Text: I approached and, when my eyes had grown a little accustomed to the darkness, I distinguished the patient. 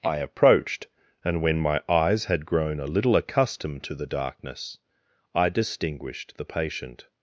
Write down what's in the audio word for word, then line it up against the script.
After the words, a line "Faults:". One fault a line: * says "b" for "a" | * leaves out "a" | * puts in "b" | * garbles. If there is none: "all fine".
I approached and, when my eyes had grown a little accustomed to the darkness, I distinguished the patient.
Faults:
all fine